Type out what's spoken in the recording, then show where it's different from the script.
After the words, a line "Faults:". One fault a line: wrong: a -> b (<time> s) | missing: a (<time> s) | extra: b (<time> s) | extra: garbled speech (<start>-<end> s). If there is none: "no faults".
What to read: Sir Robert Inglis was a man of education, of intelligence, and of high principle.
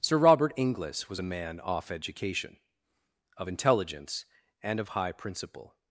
Sir Robert Inglis was a man off education, of intelligence, and of high principle.
Faults:
wrong: of -> off (1.6 s)